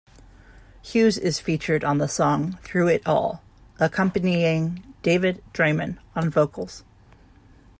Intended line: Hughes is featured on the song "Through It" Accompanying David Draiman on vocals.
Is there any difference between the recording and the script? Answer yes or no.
yes